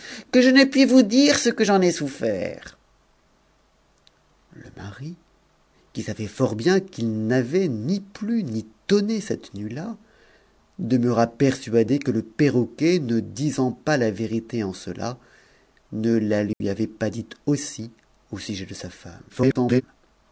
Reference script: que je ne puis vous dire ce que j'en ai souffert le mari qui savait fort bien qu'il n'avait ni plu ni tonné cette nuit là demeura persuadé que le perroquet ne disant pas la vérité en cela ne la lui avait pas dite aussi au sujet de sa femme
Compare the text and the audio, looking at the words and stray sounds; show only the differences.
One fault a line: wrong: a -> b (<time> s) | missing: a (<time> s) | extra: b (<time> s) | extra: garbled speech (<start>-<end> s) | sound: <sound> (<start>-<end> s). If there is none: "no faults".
sound: dropout (16.5-16.6 s)
extra: garbled speech (19.3-19.8 s)